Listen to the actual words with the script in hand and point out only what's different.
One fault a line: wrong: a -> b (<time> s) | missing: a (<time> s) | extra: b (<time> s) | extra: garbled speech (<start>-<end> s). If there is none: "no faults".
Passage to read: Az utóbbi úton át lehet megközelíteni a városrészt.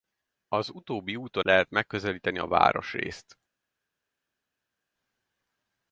missing: át (1.5 s)